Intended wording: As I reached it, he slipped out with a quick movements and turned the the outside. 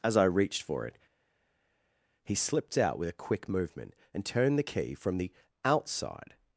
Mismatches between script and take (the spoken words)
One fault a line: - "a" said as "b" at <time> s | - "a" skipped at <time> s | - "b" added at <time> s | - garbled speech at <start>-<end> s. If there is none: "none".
- "for" added at 0.6 s
- "movements" said as "movement" at 3.5 s
- "key from" added at 4.6 s